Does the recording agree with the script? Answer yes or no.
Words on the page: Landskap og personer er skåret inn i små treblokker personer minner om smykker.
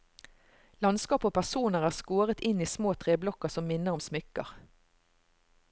no